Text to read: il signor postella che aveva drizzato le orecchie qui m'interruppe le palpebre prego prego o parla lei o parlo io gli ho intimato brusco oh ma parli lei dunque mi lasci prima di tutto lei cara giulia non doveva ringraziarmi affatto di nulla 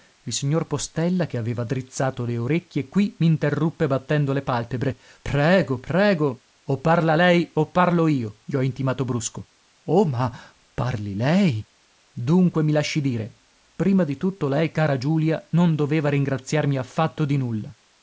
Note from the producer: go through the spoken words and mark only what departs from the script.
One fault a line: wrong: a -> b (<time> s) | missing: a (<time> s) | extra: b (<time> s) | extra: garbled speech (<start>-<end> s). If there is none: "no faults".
extra: battendo (3.9 s)
extra: dire (13.0 s)